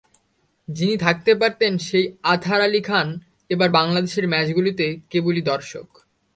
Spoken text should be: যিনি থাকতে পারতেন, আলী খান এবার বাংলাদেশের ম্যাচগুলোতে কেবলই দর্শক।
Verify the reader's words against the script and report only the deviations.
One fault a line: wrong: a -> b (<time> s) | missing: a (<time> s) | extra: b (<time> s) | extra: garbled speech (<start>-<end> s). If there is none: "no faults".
extra: সেই আতহার (1.8 s)